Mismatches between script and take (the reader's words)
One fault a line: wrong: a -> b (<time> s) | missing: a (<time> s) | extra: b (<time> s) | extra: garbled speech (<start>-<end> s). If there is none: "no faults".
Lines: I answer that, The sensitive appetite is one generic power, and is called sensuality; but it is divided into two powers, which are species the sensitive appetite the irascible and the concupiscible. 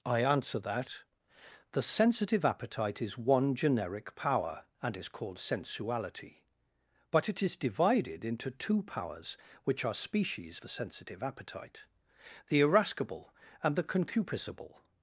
no faults